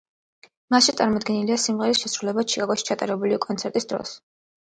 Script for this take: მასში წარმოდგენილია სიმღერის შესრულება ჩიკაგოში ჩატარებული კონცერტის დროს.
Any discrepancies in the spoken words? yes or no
no